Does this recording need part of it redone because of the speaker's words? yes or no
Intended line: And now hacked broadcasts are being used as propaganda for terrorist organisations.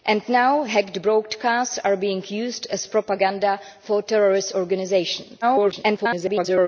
yes